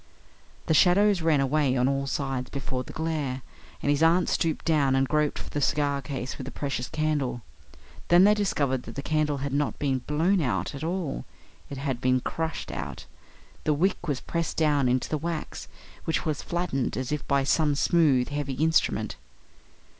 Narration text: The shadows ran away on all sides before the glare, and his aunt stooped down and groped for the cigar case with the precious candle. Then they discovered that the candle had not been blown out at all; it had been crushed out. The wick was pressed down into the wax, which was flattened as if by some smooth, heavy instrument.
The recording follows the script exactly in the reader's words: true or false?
true